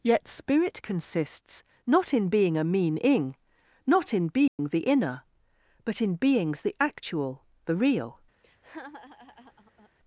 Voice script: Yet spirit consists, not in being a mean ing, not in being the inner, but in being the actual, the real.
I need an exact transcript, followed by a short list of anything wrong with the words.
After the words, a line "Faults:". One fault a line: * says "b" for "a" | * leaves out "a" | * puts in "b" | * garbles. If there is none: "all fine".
Yet spirit consists, not in being a mean ing, not in being the inner, but in beings the actual, the real.
Faults:
* says "beings" for "being"